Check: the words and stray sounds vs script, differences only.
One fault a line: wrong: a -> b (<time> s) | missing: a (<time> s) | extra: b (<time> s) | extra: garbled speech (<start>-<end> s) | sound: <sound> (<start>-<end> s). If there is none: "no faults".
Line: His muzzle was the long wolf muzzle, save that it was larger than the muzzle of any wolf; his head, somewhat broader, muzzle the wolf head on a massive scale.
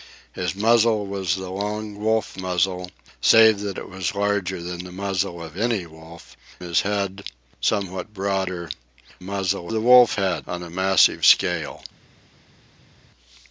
no faults